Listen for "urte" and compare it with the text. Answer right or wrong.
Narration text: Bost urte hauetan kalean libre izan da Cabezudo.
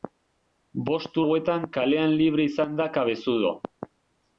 wrong